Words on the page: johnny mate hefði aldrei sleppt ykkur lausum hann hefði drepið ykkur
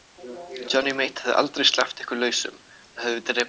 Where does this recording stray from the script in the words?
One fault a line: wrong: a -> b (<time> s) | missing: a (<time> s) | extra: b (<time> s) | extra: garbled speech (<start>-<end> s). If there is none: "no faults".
no faults